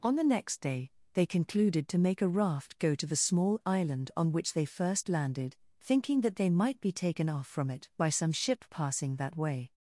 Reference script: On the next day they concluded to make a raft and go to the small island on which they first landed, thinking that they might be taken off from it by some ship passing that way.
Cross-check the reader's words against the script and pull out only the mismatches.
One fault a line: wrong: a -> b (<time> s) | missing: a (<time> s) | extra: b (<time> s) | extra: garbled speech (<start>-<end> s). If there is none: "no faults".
missing: and (2.8 s)